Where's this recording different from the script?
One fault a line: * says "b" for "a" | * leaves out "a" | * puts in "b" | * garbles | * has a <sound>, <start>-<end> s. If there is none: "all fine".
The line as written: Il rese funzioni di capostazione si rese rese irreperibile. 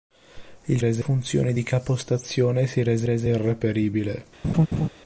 * has a laugh, 4.4-4.9 s